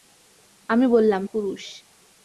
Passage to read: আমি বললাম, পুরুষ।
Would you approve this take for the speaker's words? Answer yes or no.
yes